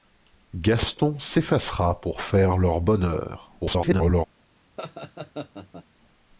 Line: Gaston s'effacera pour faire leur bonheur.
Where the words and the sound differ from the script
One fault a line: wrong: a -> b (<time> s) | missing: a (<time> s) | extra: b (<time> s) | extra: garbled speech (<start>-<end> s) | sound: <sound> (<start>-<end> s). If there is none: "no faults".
extra: garbled speech (3.6-4.3 s)
sound: laugh (4.8-5.8 s)